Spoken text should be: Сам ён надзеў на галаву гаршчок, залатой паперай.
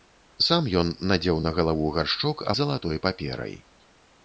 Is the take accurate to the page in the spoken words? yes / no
yes